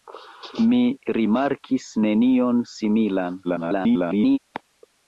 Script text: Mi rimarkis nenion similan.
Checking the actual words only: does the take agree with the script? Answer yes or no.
no